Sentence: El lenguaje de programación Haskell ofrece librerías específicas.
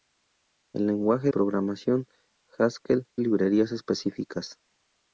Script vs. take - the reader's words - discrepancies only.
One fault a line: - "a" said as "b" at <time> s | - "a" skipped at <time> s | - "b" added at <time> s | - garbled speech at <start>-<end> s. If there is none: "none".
- "de" skipped at 1.3 s
- "ofrece" skipped at 3.1 s